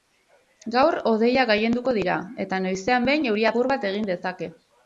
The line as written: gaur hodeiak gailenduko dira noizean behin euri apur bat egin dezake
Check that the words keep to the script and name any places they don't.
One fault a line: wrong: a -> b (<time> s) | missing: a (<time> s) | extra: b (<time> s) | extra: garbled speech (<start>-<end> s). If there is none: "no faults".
extra: eta (2.5 s)